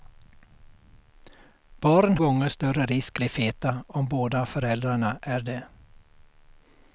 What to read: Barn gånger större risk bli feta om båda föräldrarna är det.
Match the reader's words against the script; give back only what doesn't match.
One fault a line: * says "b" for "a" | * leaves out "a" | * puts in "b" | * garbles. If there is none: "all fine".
all fine